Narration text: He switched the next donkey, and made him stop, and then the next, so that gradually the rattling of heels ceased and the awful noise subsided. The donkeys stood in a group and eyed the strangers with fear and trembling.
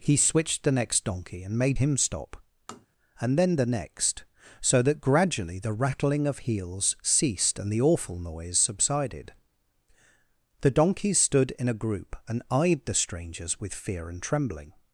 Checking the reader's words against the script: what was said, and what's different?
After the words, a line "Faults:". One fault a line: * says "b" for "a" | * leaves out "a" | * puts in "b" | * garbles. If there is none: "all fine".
He switched the next donkey, and made him stop, and then the next, so that gradually the rattling of heels ceased and the awful noise subsided. The donkeys stood in a group and eyed the strangers with fear and trembling.
Faults:
all fine